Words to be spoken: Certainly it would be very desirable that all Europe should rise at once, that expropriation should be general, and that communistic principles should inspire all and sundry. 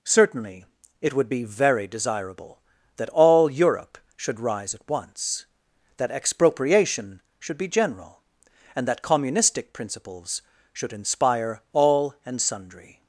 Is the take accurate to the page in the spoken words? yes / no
yes